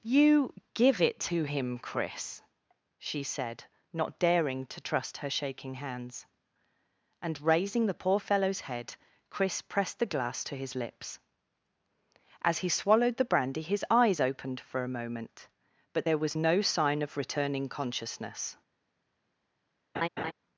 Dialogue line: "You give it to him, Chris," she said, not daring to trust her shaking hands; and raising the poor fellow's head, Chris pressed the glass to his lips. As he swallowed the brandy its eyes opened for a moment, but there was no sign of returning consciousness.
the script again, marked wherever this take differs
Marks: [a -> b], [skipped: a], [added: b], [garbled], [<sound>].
"You give it to him, Chris," she said, not daring to trust her shaking hands; and raising the poor fellow's head, Chris pressed the glass to his lips. As he swallowed the brandy [its -> his] eyes opened for a moment, but there was no sign of returning consciousness. [laugh]